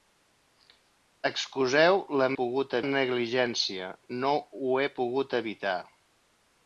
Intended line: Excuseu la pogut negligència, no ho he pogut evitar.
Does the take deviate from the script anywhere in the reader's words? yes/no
no